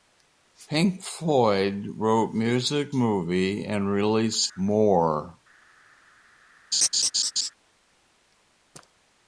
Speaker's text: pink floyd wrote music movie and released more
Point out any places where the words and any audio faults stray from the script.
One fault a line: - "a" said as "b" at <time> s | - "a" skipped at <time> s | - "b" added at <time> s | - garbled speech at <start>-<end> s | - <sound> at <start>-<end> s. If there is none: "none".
- laugh at 6.7-7.5 s